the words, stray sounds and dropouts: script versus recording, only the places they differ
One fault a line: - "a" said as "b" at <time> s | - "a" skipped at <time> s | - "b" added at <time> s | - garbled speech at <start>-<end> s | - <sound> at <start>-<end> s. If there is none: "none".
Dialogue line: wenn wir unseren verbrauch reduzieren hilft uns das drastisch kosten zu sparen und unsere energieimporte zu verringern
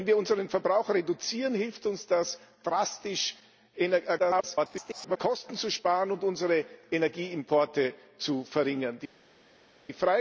- garbled speech at 4.2-5.2 s